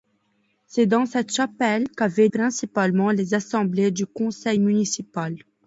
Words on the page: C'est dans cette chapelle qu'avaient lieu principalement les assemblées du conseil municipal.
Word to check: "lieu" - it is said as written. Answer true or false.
false